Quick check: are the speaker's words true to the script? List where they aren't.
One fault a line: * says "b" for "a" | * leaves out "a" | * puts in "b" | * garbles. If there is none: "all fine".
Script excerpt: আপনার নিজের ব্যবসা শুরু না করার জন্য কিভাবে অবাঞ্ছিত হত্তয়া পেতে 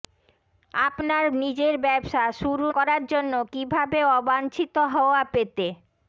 * leaves out "না"